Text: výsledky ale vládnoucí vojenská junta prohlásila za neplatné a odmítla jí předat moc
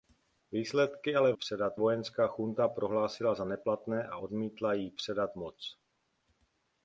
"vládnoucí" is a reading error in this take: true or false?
true